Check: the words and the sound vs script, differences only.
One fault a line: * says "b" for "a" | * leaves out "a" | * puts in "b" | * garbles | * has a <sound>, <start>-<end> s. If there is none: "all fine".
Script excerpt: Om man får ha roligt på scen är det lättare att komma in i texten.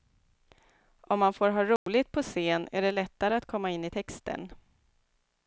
* has a dropout, 1.8-1.9 s